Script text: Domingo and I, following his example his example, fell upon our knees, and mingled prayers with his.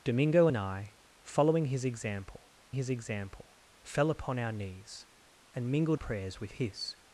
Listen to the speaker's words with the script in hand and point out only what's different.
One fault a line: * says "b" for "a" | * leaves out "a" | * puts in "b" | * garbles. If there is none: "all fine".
all fine